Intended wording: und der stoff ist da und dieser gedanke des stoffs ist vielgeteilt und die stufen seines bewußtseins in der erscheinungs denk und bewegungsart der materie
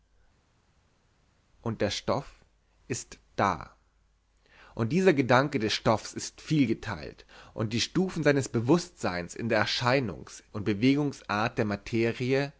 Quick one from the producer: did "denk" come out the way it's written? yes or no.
no